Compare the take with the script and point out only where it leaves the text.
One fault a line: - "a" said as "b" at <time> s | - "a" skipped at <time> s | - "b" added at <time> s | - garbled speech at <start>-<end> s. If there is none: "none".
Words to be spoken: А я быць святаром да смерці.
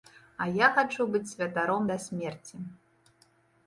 - "хачу" added at 0.8 s